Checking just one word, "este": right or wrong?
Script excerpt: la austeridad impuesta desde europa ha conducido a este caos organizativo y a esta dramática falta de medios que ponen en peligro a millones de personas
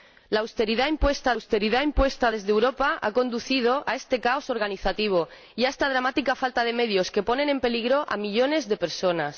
right